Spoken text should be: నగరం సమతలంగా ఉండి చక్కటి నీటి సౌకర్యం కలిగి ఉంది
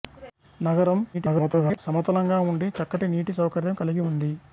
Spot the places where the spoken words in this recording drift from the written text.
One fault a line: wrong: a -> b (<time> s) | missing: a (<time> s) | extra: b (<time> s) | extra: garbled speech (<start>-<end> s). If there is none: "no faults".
extra: garbled speech (1.1-1.8 s)